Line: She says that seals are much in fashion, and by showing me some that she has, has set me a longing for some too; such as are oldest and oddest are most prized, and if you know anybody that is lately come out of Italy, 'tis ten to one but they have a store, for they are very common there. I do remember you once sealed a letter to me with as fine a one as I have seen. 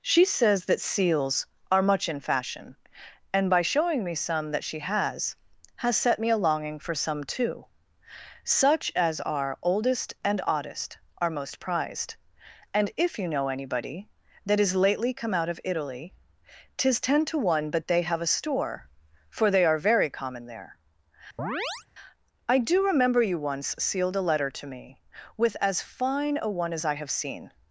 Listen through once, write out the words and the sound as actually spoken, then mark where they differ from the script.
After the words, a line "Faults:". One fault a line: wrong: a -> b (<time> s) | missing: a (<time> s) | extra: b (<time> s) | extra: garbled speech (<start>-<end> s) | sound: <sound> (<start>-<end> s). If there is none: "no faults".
She says that seals are much in fashion, and by showing me some that she has, has set me a longing for some too; such as are oldest and oddest are most prized, and if you know anybody that is lately come out of Italy, 'tis ten to one but they have a store, for they are very common there. I do remember you once sealed a letter to me with as fine a one as I have seen.
Faults:
sound: chirp (21.4-21.9 s)